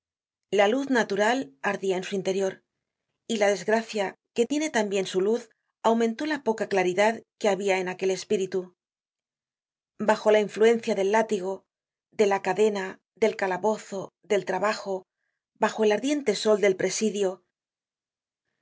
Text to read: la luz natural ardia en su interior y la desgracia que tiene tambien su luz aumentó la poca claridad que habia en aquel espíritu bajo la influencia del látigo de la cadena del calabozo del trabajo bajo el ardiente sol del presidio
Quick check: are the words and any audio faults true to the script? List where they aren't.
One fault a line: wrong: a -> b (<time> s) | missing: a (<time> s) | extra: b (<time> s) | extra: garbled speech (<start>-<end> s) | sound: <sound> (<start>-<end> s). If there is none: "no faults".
no faults